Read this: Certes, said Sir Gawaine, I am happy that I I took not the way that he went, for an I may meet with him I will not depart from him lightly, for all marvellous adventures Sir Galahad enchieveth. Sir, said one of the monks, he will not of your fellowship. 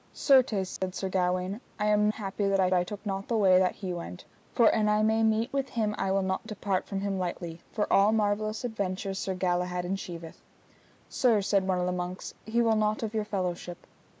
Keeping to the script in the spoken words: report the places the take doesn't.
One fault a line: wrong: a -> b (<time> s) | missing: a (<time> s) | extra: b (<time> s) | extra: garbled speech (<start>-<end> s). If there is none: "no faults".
no faults